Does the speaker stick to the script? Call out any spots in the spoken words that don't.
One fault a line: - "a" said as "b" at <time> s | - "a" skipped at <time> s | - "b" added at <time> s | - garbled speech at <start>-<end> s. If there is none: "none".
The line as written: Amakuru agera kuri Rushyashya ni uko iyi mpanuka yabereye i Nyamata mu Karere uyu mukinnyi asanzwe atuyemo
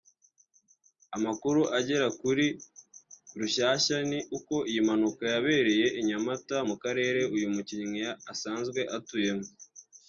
none